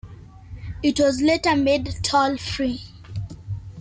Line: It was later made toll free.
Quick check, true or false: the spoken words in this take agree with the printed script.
true